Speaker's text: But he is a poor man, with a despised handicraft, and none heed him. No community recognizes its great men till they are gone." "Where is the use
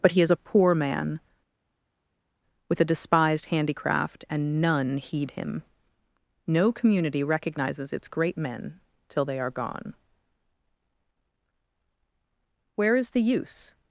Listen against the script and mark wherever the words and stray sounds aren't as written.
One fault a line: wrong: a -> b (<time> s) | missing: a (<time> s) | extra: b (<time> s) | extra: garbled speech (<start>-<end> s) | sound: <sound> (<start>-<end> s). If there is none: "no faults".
no faults